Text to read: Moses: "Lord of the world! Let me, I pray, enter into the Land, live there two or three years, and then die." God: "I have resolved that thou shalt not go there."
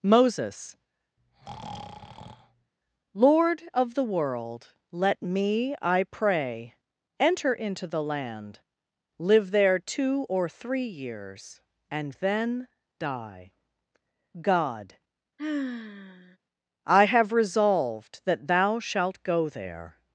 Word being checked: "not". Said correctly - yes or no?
no